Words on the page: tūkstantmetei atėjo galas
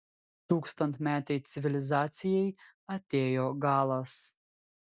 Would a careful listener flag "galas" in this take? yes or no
no